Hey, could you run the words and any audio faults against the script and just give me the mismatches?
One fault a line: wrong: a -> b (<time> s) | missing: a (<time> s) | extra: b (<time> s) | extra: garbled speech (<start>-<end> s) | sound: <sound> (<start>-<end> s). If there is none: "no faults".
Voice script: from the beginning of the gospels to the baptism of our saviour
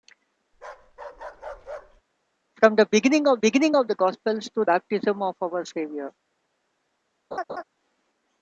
sound: bark (0.5-2.0 s)
extra: beginning of (3.4 s)
missing: the (4.6 s)
sound: laugh (7.3-7.6 s)